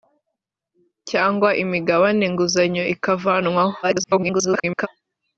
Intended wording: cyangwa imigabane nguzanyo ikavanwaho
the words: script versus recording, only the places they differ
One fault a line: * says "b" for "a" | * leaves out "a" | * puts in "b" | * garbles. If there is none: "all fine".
* garbles